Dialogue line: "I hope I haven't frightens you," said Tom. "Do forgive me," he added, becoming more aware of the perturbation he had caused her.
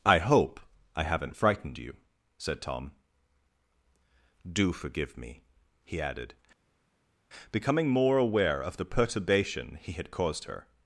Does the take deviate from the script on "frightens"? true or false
true